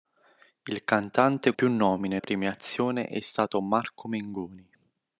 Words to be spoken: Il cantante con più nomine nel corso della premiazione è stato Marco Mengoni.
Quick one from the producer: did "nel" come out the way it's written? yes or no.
no